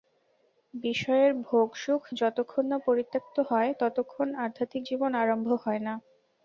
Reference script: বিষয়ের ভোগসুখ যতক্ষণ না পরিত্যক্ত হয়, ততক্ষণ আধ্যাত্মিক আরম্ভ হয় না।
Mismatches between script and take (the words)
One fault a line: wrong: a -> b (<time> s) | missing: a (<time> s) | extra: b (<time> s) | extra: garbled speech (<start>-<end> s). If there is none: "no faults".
extra: জীবন (4.9 s)